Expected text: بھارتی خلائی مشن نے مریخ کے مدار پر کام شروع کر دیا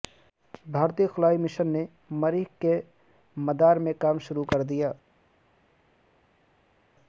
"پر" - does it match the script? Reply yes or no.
no